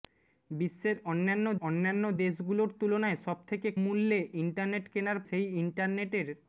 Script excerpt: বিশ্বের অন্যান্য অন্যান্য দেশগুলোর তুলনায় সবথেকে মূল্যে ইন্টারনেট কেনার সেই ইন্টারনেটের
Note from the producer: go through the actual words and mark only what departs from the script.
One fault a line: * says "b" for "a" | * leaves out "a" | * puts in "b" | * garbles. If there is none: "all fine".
all fine